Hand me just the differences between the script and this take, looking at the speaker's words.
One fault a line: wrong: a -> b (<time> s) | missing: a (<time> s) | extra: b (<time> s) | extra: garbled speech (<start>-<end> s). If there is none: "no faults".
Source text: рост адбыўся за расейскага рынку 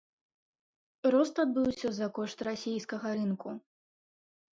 extra: кошт (2.1 s)